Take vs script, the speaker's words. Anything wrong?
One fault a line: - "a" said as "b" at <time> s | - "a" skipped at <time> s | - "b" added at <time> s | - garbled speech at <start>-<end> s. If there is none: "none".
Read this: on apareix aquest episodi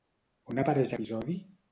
- "aquest" skipped at 1.0 s